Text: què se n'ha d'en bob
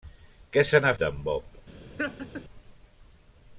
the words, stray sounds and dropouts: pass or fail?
fail